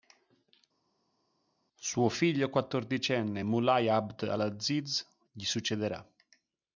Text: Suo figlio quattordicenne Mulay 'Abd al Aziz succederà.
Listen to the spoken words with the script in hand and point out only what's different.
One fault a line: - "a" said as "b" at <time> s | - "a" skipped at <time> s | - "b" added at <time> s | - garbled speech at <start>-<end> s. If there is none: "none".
- "gli" added at 5.3 s